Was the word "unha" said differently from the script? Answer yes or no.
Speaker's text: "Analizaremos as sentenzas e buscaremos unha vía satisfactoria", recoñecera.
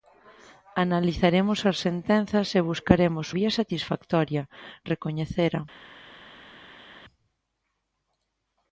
yes